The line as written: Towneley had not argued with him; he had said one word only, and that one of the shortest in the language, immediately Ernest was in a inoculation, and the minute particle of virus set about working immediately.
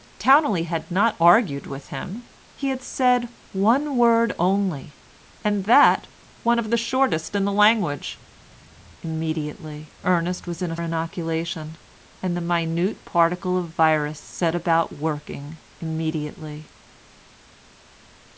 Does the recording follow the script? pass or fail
pass